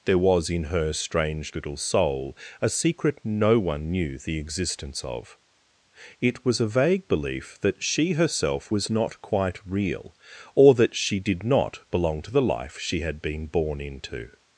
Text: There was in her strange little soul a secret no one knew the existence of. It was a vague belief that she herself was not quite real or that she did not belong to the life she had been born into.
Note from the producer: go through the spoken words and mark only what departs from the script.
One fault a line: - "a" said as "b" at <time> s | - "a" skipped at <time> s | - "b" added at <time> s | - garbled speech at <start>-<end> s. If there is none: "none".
none